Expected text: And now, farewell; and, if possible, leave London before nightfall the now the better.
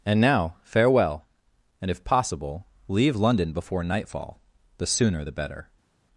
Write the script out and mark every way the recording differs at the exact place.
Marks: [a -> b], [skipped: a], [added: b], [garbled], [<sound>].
And now, farewell; and, if possible, leave London before nightfall the [now -> sooner] the better.